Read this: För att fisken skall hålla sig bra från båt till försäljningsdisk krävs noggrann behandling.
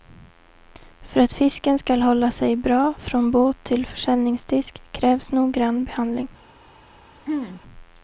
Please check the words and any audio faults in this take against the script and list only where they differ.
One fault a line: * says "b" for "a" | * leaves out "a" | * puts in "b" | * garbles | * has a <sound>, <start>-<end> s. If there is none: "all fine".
* has a throat clearing, 7.3-7.6 s